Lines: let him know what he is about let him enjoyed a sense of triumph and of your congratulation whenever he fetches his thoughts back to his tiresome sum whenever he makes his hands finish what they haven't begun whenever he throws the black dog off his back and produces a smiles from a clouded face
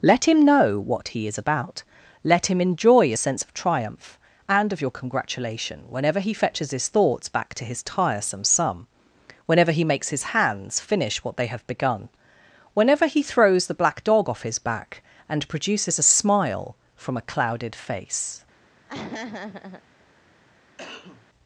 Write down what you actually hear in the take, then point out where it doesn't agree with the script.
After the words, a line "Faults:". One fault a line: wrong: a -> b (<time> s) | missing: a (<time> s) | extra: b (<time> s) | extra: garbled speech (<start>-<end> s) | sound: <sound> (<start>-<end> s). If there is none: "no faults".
let him know what he is about let him enjoy a sense of triumph and of your congratulation whenever he fetches his thoughts back to his tiresome sum whenever he makes his hands finish what they have begun whenever he throws the black dog off his back and produces a smile from a clouded face
Faults:
wrong: enjoyed -> enjoy (2.6 s)
wrong: haven't -> have (11.5 s)
wrong: smiles -> smile (16.1 s)
sound: laugh (18.9-19.8 s)
sound: cough (20.8-21.3 s)